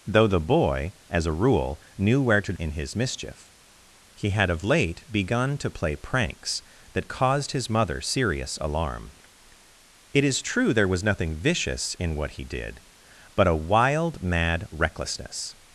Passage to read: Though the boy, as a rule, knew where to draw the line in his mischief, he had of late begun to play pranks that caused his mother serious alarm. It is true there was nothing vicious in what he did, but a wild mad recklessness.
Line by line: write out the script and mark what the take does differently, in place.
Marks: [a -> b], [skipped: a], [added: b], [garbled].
Though the boy, as a rule, knew where to [skipped: draw the line] in his mischief, he had of late begun to play pranks that caused his mother serious alarm. It is true there was nothing vicious in what he did, but a wild mad recklessness.